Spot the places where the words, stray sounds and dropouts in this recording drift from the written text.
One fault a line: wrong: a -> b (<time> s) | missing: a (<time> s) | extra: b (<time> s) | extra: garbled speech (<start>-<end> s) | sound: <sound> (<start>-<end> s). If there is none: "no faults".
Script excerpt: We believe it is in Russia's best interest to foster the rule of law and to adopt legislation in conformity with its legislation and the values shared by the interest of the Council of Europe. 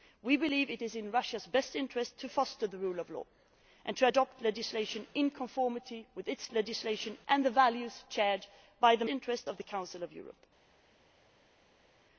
no faults